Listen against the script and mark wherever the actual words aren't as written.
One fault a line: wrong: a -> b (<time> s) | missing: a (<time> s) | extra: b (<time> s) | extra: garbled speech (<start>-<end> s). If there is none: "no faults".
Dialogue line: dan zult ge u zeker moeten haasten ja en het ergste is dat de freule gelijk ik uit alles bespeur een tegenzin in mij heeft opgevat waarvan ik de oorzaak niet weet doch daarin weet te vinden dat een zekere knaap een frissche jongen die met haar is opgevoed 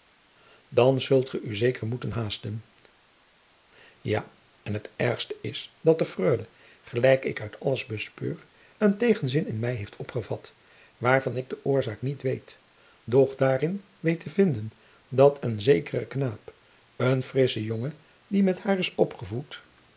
no faults